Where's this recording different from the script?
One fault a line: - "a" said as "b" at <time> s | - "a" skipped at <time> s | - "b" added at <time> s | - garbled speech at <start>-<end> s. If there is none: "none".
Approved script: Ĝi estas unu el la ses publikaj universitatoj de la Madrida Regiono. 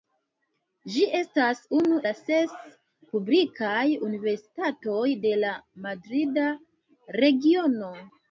- "el" skipped at 2.0 s